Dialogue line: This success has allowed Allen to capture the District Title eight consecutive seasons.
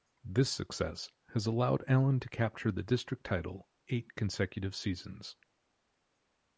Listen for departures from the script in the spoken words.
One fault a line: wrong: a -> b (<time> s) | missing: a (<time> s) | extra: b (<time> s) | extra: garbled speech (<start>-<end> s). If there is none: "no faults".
no faults